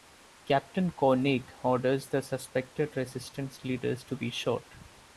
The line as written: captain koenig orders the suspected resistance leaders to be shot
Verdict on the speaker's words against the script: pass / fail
pass